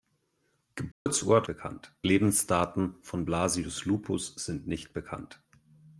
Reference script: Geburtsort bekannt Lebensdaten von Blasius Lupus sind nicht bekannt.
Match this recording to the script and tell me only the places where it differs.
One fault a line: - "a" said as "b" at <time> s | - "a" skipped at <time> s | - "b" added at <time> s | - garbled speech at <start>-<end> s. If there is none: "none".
none